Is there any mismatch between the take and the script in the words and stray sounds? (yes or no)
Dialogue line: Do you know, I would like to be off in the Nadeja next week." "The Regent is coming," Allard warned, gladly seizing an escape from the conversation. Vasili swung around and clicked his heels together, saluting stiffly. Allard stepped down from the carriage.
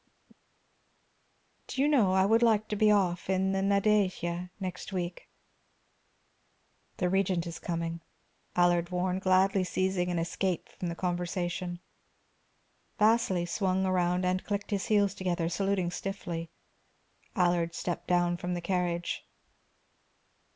no